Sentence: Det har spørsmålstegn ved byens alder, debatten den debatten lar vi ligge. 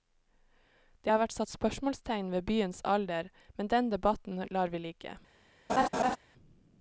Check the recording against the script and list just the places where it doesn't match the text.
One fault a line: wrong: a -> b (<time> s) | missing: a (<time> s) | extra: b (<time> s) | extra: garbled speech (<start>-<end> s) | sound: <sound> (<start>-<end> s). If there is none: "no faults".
extra: vært satt (1.2 s)
wrong: debatten -> men (3.6 s)
sound: laugh (5.7-6.2 s)